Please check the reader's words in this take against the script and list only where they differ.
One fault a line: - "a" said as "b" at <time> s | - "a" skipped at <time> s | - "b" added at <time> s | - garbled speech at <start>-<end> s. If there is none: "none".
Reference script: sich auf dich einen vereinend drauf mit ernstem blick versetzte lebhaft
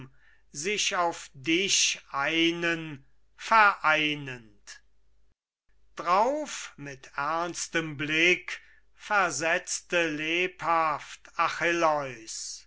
none